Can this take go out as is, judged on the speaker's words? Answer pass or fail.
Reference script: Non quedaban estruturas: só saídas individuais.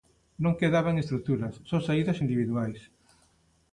pass